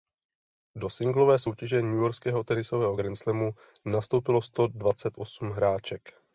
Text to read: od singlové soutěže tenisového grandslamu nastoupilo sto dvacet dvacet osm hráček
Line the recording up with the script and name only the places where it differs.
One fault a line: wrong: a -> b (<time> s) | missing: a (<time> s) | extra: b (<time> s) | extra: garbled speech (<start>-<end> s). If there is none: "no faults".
wrong: od -> do (0.8 s)
extra: newyorského (1.8 s)
missing: dvacet (5.1 s)